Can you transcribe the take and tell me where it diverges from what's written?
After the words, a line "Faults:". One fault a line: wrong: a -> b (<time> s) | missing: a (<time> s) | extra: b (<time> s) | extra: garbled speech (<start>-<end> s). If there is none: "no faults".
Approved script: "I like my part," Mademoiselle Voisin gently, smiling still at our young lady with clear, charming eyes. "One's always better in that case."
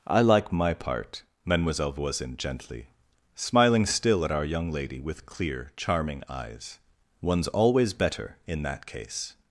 "I like my part," Mademoiselle Voisin gently, smiling still at our young lady with clear, charming eyes. "One's always better in that case."
Faults:
no faults